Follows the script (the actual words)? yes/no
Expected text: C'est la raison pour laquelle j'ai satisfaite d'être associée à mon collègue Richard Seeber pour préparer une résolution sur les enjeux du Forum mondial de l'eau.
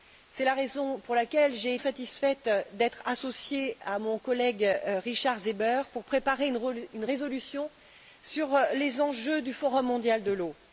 yes